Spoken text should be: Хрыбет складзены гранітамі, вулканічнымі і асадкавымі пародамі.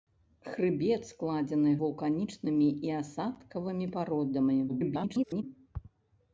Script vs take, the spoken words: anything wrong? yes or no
yes